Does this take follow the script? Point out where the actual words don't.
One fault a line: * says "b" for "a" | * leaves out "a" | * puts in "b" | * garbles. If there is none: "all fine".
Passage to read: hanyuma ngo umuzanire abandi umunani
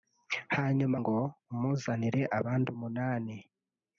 all fine